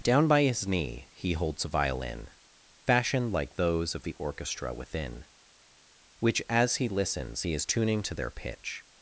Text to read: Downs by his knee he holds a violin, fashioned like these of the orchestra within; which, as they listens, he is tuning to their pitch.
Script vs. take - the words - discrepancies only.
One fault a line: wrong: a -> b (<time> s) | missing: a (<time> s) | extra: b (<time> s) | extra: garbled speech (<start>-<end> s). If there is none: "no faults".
wrong: Downs -> Down (0.0 s)
wrong: these -> those (3.5 s)
wrong: they -> he (6.8 s)